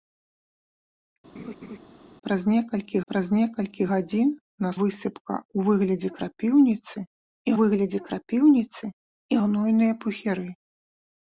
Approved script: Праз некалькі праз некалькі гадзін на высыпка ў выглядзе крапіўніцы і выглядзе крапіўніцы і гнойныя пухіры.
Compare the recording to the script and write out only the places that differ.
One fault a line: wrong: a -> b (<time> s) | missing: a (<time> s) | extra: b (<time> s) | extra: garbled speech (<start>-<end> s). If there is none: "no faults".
no faults